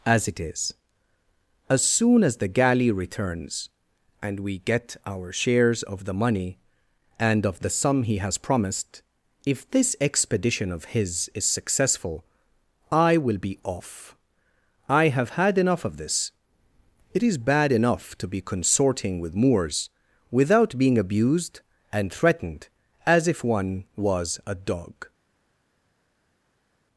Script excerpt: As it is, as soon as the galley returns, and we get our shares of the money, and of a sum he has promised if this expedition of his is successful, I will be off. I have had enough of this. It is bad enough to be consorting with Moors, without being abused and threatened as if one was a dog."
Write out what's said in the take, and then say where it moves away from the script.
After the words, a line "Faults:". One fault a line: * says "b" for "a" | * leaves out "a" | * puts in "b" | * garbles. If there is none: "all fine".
As it is, as soon as the galley returns, and we get our shares of the money, and of the sum he has promised if this expedition of his is successful, I will be off. I have had enough of this. It is bad enough to be consorting with Moors, without being abused and threatened as if one was a dog."
Faults:
* says "the" for "a"